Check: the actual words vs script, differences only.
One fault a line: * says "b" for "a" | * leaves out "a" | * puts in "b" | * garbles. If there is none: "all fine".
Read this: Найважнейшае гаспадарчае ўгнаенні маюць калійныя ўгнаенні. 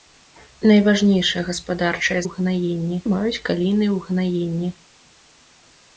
all fine